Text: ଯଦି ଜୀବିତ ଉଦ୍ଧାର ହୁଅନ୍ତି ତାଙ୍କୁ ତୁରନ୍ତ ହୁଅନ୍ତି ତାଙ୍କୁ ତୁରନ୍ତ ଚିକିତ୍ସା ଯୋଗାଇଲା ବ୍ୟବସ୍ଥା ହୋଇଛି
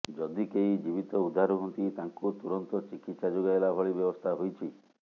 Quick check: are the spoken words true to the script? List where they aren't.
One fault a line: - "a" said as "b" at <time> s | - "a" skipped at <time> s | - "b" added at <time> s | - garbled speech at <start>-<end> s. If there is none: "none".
- "କେହି" added at 0.5 s
- "ହୁଅନ୍ତି ତାଙ୍କୁ ତୁରନ୍ତ" skipped at 2.8 s
- "ଭଳି" added at 3.8 s